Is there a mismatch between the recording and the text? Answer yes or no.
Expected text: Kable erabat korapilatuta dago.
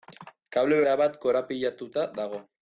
no